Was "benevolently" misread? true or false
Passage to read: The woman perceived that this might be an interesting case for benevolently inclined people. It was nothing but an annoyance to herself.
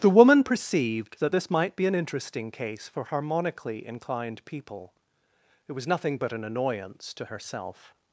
true